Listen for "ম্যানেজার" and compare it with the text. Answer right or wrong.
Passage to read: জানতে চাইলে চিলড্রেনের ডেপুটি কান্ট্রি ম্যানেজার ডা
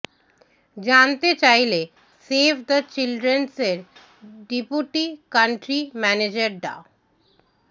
right